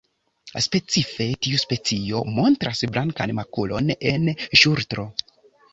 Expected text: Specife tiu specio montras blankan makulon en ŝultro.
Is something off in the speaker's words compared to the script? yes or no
no